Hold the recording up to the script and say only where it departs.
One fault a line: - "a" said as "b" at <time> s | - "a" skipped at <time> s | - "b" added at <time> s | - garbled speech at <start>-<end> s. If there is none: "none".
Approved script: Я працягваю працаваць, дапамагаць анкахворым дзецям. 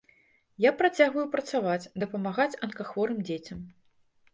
none